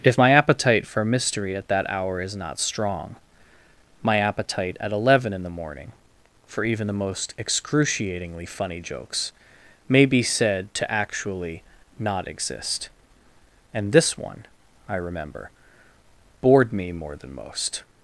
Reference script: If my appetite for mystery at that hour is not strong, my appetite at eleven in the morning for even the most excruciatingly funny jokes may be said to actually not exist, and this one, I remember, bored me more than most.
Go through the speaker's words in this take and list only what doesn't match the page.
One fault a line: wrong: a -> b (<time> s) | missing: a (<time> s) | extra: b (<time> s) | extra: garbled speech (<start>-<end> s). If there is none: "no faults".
no faults